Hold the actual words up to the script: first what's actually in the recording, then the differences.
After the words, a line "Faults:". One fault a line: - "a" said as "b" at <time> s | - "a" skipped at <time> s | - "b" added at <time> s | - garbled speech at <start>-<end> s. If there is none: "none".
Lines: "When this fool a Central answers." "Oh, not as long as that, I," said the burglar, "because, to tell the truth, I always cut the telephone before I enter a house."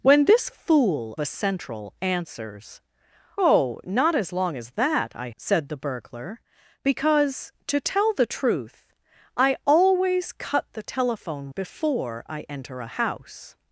"When this fool a Central answers." "Oh, not as long as that, I," said the burglar, "because, to tell the truth, I always cut the telephone before I enter a house."
Faults:
none